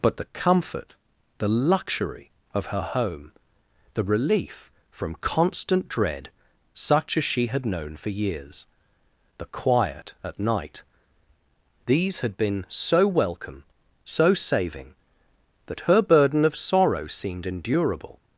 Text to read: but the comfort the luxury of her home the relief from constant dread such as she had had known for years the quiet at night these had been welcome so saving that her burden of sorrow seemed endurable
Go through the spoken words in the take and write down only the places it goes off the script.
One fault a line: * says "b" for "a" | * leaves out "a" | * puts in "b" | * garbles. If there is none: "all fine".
* leaves out "had"
* puts in "so"